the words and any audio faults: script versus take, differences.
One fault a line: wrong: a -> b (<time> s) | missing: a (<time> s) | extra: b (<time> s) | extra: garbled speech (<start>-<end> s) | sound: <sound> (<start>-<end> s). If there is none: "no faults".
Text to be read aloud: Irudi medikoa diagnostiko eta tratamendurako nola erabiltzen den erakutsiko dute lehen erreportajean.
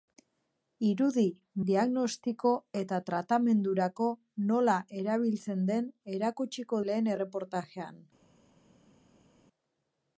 missing: medikoa (1.2 s)
missing: dute (6.8 s)